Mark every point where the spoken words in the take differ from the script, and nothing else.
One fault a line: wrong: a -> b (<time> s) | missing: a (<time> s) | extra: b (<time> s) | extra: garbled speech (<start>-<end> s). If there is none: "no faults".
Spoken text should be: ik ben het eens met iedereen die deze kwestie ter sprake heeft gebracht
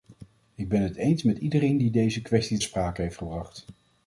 missing: ter (2.6 s)